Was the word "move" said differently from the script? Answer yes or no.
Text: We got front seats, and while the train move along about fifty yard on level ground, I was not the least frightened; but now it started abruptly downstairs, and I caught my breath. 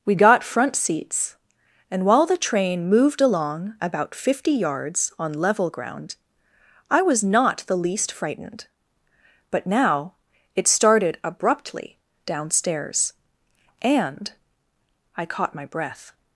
yes